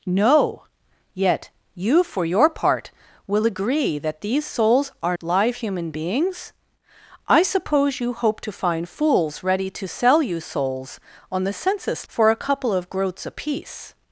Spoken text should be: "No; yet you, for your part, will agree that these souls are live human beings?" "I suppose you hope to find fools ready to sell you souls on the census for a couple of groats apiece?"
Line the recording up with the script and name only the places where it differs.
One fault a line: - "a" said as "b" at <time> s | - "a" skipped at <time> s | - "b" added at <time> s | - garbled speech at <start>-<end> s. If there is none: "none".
none